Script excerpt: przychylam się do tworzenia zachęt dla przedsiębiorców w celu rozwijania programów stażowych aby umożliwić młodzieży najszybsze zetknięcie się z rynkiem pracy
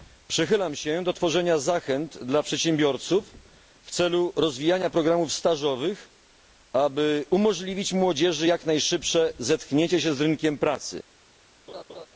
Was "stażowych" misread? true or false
false